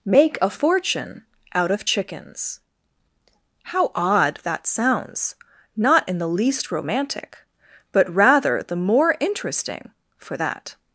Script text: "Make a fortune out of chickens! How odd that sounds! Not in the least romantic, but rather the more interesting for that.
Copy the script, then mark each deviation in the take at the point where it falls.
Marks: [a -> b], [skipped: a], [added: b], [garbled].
"Make a fortune out of chickens! How odd that sounds! Not in the least romantic, but rather the more interesting for that.